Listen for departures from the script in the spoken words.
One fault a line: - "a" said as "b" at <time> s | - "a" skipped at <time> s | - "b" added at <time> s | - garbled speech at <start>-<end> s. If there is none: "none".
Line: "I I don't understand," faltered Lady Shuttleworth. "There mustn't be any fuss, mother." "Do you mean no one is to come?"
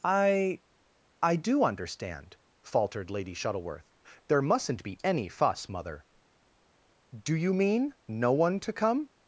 - "don't" said as "do" at 1.4 s
- "is" skipped at 8.6 s